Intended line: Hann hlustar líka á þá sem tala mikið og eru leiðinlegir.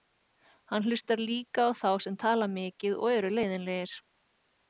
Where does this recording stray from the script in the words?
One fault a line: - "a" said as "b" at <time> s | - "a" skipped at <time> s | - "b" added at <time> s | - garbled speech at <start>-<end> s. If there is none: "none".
none